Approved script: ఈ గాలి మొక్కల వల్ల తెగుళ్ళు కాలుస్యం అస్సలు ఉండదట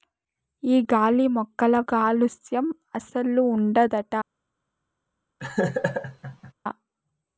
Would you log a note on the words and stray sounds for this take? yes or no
yes